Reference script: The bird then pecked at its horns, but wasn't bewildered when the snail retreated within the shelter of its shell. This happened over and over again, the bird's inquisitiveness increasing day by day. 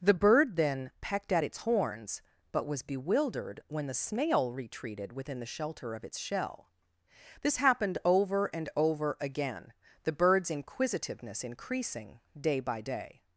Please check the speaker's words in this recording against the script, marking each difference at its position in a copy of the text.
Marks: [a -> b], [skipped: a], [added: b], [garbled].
The bird then pecked at its horns, but [wasn't -> was] bewildered when the snail retreated within the shelter of its shell. This happened over and over again, the bird's inquisitiveness increasing day by day.